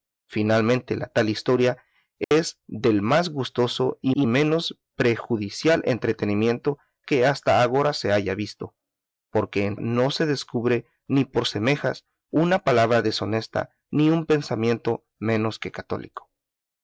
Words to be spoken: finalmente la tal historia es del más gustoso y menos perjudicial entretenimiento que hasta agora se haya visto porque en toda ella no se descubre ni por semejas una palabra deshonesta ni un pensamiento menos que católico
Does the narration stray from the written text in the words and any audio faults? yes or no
yes